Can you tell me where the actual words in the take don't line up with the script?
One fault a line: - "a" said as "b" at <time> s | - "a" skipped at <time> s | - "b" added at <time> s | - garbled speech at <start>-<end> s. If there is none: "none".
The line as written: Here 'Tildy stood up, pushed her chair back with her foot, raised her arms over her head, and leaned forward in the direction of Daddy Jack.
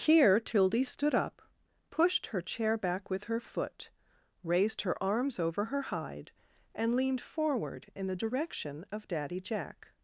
- "head" said as "hide" at 5.8 s